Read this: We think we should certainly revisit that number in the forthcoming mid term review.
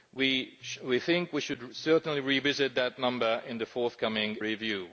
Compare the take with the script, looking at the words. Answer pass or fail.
fail